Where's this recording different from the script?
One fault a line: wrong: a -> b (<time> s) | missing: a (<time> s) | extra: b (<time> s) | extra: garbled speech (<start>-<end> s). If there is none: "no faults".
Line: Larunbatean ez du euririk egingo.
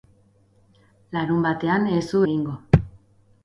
missing: euririk (2.2 s)